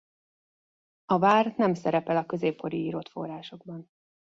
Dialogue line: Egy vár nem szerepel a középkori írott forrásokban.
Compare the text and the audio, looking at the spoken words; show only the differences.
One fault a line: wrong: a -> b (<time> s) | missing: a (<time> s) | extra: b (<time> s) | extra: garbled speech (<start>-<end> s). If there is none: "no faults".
wrong: Egy -> A (1.1 s)